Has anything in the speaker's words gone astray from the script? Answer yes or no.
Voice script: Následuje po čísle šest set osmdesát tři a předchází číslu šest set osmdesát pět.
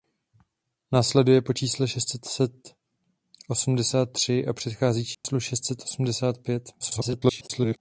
yes